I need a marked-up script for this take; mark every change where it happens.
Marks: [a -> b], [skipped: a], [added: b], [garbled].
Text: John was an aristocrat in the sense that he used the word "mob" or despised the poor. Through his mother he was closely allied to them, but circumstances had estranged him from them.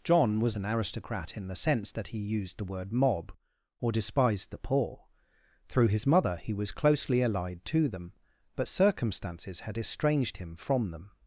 John was an aristocrat in the sense that he used the word "mob" or despised the poor. Through his mother he was closely allied to them, but circumstances had estranged him from them.